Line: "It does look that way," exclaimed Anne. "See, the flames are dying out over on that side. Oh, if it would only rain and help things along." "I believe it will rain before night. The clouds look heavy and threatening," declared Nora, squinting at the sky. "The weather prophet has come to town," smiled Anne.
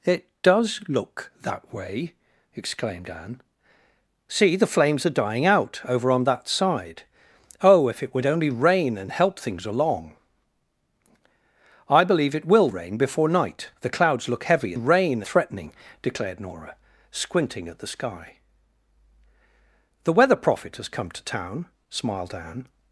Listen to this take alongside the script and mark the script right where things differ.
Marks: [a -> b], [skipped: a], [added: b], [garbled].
"It does look that way," exclaimed Anne. "See, the flames are dying out over on that side. Oh, if it would only rain and help things along." "I believe it will rain before night. The clouds look heavy [and -> rain] threatening," declared Nora, squinting at the sky. "The weather prophet has come to town," smiled Anne.